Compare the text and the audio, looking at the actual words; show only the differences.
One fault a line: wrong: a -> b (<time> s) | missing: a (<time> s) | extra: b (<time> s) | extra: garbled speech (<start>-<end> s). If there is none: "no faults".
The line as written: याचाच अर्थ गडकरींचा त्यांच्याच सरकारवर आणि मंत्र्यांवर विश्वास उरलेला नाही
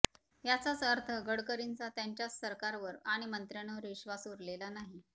no faults